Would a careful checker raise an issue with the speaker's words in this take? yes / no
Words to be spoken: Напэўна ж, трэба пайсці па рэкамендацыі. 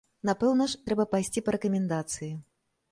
no